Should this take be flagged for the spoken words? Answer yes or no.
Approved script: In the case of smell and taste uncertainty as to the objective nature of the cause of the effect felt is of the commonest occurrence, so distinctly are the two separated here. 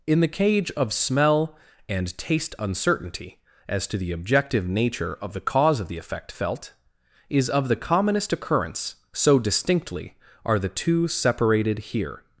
yes